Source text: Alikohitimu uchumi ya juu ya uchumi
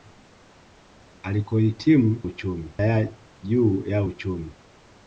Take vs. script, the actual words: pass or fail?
pass